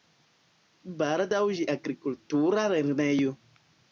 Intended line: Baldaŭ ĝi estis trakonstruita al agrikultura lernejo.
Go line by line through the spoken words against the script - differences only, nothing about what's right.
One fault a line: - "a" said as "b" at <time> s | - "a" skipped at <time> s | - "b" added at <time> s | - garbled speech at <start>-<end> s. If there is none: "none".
- "estis trakonstruita al" skipped at 1.6 s